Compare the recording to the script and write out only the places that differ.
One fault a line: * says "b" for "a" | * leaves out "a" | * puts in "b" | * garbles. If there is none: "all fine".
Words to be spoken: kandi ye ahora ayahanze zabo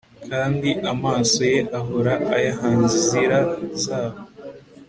* puts in "amaso"
* puts in "inzira"